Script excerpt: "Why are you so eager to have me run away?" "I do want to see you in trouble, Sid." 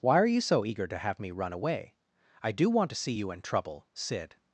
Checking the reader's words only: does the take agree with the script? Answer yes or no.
yes